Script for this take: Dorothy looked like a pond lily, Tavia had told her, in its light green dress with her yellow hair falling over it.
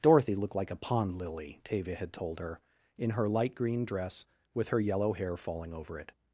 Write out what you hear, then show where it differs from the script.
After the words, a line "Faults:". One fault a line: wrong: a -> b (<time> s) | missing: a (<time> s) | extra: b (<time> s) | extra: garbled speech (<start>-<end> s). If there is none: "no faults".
Dorothy looked like a pond lily, Tavia had told her, in her light green dress with her yellow hair falling over it.
Faults:
wrong: its -> her (3.1 s)